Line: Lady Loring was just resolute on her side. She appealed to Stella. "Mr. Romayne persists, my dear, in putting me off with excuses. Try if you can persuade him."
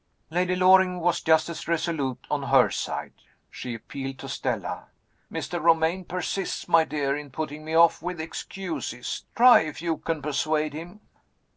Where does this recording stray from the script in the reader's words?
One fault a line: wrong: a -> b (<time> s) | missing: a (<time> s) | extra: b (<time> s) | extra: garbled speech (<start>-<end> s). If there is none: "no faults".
extra: as (1.5 s)